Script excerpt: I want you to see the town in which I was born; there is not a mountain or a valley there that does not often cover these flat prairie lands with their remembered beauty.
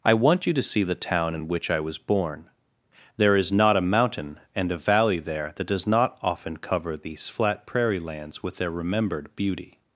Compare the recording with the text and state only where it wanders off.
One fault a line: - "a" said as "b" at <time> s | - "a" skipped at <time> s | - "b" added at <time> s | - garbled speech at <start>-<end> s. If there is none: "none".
- "or" said as "and" at 4.5 s